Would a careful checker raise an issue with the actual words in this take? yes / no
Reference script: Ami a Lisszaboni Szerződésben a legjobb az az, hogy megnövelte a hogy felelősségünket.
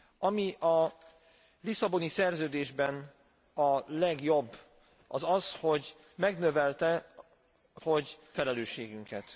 no